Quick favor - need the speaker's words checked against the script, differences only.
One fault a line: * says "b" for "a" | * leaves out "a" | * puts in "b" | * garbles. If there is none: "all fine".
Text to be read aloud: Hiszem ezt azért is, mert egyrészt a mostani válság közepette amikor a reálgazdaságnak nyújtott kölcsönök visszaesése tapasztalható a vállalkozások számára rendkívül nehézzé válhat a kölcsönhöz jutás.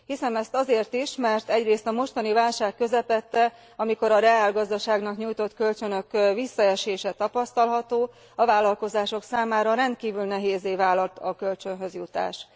all fine